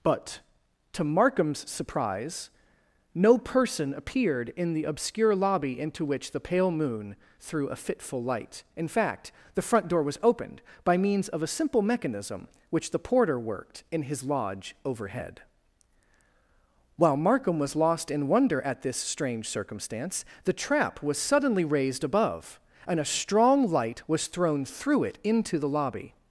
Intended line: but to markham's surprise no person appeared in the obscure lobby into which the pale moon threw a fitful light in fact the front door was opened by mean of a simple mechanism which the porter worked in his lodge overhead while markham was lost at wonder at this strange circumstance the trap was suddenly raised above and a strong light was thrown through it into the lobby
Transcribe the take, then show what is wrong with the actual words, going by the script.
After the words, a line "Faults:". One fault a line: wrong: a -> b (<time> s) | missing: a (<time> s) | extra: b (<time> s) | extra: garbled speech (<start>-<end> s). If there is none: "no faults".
but to markham's surprise no person appeared in the obscure lobby into which the pale moon threw a fitful light in fact the front door was opened by means of a simple mechanism which the porter worked in his lodge overhead while markham was lost in wonder at this strange circumstance the trap was suddenly raised above and a strong light was thrown through it into the lobby
Faults:
wrong: mean -> means (11.0 s)
wrong: at -> in (18.1 s)